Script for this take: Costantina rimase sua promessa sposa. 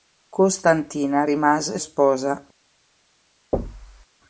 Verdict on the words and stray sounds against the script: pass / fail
fail